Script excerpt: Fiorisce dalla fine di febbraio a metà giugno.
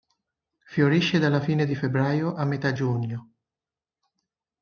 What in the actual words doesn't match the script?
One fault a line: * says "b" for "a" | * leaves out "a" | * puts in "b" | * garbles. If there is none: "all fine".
all fine